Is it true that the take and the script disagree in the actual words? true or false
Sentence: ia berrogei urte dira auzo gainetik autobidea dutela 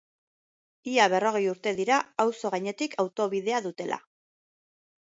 false